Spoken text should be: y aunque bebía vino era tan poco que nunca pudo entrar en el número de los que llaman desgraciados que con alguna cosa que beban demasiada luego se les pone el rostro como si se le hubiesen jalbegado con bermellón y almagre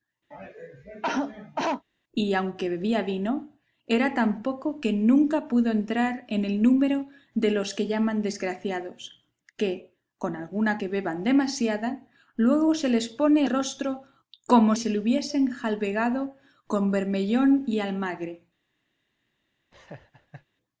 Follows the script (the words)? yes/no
no